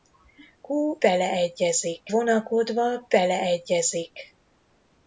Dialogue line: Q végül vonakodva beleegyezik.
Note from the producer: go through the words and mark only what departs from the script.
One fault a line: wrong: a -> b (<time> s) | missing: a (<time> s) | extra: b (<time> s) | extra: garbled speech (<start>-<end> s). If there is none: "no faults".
wrong: végül -> beleegyezik (1.0 s)